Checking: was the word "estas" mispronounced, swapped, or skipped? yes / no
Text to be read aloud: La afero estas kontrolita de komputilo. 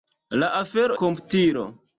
yes